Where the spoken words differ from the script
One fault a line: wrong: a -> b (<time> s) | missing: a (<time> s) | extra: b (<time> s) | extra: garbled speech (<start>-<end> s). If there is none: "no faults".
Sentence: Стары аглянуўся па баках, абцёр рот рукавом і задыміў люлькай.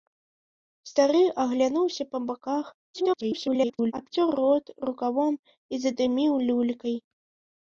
extra: garbled speech (2.9-3.9 s)